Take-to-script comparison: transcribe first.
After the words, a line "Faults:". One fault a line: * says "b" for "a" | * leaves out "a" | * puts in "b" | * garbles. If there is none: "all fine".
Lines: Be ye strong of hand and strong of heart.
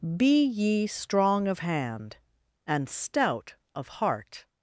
Be ye strong of hand and stout of heart.
Faults:
* says "stout" for "strong"